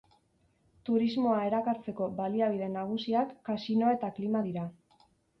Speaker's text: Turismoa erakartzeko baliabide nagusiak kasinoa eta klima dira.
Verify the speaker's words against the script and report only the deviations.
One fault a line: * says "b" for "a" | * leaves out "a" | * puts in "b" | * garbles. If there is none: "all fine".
all fine